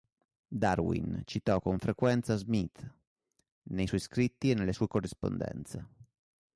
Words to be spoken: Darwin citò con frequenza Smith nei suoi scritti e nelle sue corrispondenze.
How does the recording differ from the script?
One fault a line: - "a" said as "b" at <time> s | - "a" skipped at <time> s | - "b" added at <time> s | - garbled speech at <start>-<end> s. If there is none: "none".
none